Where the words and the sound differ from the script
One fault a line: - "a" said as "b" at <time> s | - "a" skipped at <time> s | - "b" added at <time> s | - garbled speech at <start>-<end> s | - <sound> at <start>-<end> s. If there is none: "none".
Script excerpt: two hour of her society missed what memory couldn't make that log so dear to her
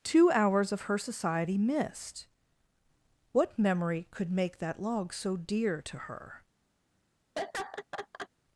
- "hour" said as "hours" at 0.3 s
- "couldn't" said as "could" at 4.1 s
- laugh at 7.4-8.3 s